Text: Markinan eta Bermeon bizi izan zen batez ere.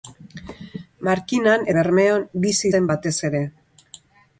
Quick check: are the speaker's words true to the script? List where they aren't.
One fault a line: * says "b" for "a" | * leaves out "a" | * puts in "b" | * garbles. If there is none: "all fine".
* leaves out "eta"
* leaves out "izan"